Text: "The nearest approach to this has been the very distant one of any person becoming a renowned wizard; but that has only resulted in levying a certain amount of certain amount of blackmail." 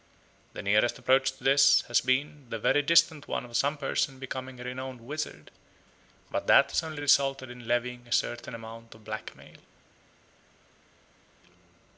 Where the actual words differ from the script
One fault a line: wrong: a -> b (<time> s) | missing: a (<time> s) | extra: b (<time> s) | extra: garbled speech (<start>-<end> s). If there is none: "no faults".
wrong: any -> some (3.5 s)
missing: certain amount of (9.0 s)